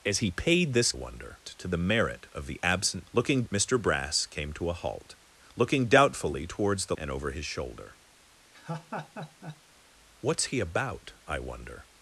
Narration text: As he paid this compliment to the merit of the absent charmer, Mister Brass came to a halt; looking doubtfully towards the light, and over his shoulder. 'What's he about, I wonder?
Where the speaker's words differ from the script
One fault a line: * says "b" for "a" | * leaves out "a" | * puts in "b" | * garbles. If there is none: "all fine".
* says "wonder" for "compliment"
* says "looking" for "charmer"
* leaves out "light"